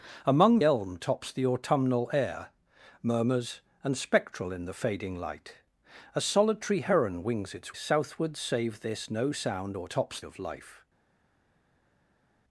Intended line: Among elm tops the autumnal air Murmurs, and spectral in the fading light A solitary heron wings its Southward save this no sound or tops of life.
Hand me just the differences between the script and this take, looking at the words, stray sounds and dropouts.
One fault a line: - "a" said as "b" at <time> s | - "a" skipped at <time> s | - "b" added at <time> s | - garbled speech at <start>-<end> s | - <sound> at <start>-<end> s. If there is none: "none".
none